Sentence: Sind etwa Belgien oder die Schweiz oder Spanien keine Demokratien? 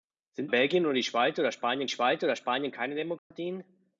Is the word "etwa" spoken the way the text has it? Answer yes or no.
no